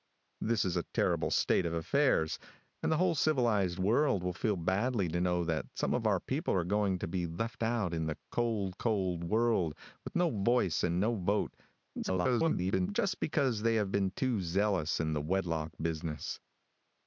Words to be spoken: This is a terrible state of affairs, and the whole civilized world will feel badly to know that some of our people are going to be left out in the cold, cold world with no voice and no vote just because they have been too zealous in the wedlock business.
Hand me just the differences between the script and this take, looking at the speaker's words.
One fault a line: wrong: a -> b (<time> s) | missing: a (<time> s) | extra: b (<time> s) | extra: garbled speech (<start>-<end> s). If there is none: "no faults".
extra: garbled speech (12.0-12.9 s)